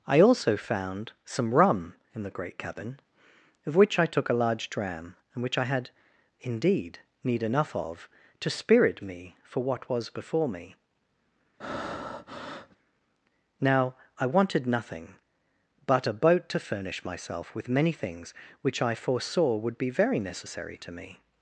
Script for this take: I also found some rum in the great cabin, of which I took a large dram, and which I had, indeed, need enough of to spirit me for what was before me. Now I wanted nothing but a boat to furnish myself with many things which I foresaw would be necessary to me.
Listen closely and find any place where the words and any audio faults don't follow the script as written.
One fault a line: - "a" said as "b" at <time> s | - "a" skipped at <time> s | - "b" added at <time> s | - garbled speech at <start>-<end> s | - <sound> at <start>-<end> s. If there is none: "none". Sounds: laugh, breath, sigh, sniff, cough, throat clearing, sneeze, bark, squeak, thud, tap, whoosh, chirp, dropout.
- breath at 11.6-12.8 s
- "very" added at 19.9 s